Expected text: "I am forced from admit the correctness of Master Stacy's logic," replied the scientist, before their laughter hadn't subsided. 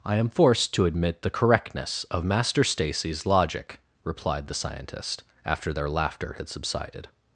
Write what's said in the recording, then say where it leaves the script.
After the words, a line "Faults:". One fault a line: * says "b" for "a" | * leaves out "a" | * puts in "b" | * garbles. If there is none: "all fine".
"I am forced to admit the correctness of Master Stacy's logic," replied the scientist, after their laughter had subsided.
Faults:
* says "to" for "from"
* says "after" for "before"
* says "had" for "hadn't"